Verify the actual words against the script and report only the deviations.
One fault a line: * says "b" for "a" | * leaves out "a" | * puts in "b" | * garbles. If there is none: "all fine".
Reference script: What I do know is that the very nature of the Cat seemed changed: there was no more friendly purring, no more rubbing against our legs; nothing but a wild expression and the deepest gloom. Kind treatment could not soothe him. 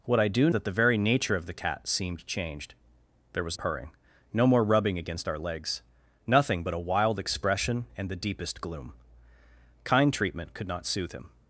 * leaves out "know is"
* leaves out "no more friendly"